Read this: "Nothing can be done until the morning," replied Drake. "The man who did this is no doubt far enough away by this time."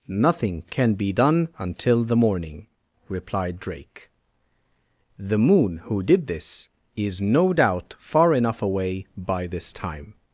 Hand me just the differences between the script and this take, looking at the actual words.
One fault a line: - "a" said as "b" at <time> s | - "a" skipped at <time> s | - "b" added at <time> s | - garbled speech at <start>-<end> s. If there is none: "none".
- "man" said as "moon" at 5.4 s